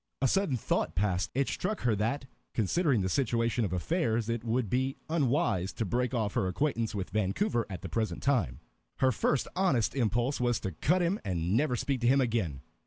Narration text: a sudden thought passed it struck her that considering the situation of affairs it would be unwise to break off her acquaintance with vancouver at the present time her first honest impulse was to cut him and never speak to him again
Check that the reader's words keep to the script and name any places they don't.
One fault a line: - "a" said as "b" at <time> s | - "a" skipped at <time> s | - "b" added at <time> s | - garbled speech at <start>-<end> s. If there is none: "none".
none